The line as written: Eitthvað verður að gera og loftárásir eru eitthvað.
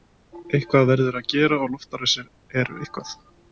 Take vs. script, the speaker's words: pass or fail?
pass